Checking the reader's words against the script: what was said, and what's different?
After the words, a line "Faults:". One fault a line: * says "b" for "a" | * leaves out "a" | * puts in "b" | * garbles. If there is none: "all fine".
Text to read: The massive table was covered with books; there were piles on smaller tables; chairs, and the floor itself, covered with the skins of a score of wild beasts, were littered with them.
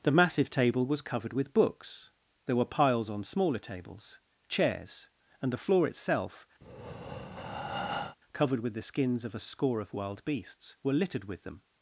The massive table was covered with books; there were piles on smaller tables; chairs, and the floor itself, covered with the skins of a score of wild beasts, were littered with them.
Faults:
all fine